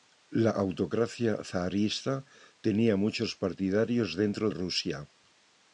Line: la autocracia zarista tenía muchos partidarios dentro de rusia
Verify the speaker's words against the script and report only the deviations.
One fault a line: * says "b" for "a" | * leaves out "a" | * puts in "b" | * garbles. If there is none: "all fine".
* leaves out "de"